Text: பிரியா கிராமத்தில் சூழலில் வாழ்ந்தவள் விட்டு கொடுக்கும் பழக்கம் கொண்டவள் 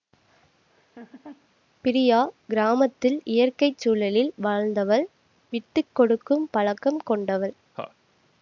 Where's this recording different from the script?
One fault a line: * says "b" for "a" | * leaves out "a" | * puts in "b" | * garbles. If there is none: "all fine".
* puts in "இயற்கை"